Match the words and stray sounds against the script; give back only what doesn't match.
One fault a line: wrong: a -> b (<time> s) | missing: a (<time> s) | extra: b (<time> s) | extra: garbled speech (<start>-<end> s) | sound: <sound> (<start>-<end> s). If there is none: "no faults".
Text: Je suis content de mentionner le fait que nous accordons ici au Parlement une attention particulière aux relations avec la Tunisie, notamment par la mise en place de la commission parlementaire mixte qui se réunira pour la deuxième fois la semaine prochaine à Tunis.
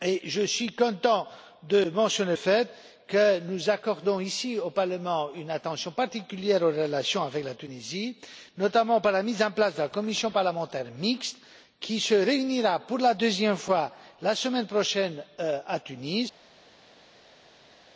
missing: le (2.4 s)